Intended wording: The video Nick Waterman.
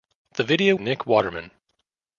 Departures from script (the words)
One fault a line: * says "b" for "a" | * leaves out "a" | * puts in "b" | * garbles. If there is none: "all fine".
all fine